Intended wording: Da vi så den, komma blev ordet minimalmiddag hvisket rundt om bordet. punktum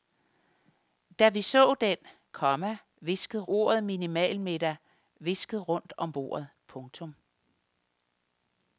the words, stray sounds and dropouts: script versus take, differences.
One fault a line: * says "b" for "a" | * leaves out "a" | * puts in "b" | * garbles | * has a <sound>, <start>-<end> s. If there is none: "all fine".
* says "hvisket" for "blev"